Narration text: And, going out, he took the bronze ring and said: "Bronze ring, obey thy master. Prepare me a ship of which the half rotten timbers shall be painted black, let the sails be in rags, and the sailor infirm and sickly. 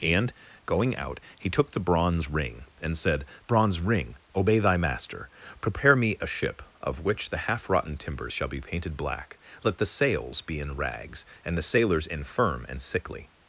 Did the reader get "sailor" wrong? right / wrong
wrong